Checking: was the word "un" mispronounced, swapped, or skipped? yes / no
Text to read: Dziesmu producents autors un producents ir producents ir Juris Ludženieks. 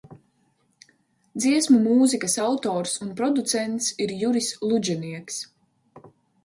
no